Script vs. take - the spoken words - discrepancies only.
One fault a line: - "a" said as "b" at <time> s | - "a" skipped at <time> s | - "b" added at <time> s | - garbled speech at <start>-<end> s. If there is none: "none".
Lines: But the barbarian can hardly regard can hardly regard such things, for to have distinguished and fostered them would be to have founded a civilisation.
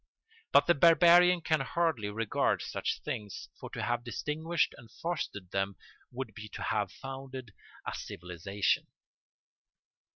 - "can hardly regard" skipped at 2.6 s